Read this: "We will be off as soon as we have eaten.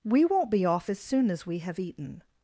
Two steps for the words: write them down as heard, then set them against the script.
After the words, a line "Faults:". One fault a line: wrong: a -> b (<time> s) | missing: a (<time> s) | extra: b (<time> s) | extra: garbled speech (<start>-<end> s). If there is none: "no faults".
"We won't be off as soon as we have eaten.
Faults:
wrong: will -> won't (0.2 s)